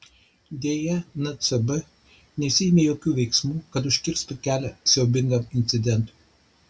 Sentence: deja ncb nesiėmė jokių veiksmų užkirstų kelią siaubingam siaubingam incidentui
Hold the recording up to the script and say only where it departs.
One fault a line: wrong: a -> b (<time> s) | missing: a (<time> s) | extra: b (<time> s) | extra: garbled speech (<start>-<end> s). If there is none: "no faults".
extra: kad (3.7 s)
missing: siaubingam (5.5 s)